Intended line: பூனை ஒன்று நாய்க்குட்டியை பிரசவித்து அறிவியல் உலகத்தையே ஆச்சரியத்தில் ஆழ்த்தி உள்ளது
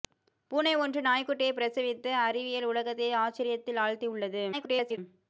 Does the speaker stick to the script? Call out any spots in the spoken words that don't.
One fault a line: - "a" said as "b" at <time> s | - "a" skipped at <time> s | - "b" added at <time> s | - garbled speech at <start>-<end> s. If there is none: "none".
- garbled speech at 4.5-5.0 s